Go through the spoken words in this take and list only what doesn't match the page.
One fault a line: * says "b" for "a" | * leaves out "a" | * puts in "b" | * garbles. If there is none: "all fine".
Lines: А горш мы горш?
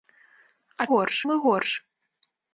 all fine